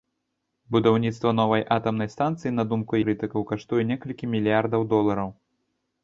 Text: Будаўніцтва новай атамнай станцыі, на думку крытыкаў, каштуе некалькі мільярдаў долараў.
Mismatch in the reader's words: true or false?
false